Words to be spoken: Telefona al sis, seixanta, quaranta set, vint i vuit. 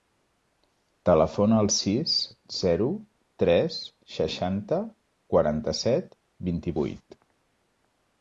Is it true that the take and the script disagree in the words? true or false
true